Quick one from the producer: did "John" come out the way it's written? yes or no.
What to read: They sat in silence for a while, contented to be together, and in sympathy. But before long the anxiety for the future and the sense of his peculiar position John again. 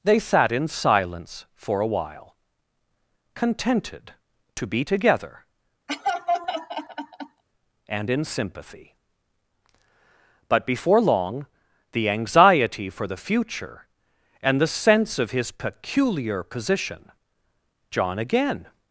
yes